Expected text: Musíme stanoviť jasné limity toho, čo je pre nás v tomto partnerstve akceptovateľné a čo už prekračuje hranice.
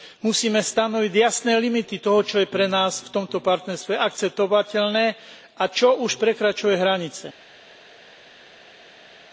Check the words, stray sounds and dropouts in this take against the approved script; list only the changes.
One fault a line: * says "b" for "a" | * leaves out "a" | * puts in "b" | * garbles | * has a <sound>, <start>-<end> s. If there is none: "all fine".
all fine